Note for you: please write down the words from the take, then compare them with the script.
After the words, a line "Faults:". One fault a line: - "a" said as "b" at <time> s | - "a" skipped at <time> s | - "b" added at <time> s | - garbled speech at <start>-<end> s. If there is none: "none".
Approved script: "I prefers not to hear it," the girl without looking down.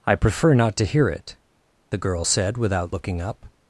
"I prefer not to hear it," the girl said, without looking up.
Faults:
- "prefers" said as "prefer" at 0.1 s
- "said" added at 2.2 s
- "down" said as "up" at 3.2 s